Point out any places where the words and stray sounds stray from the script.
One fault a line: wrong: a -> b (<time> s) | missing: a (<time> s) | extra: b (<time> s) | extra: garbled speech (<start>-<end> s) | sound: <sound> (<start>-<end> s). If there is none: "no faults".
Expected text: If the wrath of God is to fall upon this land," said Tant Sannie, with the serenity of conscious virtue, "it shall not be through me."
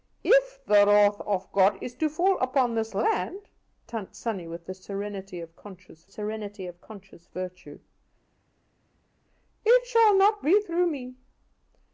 missing: said (3.5 s)
extra: serenity of conscious (6.0 s)